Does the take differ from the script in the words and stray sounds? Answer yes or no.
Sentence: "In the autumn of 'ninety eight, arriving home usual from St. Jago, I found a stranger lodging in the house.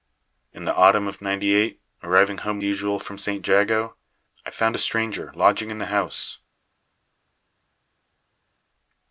no